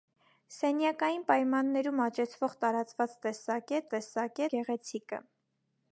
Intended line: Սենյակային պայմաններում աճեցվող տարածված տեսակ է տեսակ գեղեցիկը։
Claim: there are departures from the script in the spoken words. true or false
false